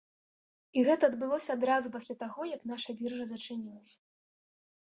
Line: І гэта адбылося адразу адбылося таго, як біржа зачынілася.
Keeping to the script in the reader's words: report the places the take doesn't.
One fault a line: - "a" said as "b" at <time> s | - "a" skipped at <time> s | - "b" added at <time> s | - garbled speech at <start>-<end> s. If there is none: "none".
- "адбылося" said as "пасля" at 1.9 s
- "наша" added at 2.7 s